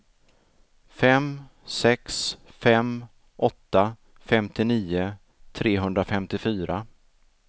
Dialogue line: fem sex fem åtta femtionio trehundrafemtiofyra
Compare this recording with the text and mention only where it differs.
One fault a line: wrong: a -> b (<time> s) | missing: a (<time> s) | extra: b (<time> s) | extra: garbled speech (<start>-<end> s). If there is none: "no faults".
no faults